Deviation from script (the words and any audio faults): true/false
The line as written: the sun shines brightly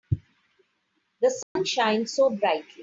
true